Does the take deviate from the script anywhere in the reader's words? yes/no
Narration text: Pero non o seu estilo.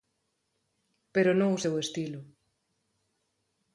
no